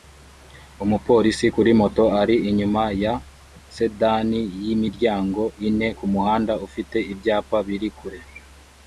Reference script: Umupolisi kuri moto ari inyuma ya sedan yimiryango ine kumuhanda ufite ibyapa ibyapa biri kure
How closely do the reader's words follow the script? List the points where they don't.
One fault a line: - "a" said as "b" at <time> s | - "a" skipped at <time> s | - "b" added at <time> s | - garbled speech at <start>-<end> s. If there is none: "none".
- "ibyapa" skipped at 7.6 s